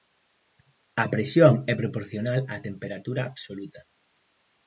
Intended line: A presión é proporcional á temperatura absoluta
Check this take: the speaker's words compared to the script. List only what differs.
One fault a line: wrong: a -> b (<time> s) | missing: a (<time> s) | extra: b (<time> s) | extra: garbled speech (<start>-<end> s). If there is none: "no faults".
no faults